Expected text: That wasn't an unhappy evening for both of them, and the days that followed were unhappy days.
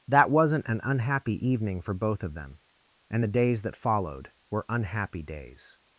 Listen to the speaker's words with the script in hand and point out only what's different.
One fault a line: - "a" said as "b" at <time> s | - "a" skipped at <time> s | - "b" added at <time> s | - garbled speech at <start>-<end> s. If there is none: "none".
none